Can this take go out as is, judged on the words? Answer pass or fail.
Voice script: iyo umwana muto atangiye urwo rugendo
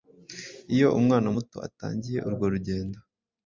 pass